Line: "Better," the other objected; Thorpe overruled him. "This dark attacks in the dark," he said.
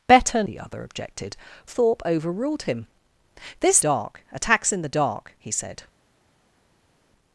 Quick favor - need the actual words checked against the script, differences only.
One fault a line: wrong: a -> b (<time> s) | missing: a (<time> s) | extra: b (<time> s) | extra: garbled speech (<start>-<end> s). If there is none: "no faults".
no faults